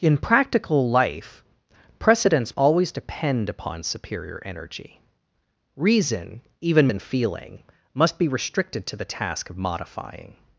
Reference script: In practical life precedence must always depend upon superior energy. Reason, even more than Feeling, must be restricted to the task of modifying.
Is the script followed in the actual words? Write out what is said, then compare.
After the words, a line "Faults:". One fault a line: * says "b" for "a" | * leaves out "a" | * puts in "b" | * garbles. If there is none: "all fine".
In practical life precedence always depend upon superior energy. Reason, even than Feeling, must be restricted to the task of modifying.
Faults:
* leaves out "must"
* leaves out "more"